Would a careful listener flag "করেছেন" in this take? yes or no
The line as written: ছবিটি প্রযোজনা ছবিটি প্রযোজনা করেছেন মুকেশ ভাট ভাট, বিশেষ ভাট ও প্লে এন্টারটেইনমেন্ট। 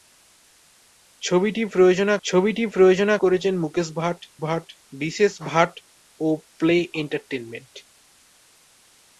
no